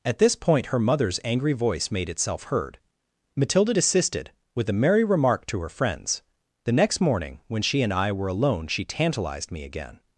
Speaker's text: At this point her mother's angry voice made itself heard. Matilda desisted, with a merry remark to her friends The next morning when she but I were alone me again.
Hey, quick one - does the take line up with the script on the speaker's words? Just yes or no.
no